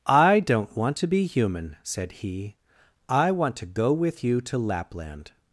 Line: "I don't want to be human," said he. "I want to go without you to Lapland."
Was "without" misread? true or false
true